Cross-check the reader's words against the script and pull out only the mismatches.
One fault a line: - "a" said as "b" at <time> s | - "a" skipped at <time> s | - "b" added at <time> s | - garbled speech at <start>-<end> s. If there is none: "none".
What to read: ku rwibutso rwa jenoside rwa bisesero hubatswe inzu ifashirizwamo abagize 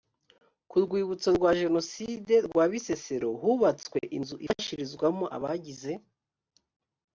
none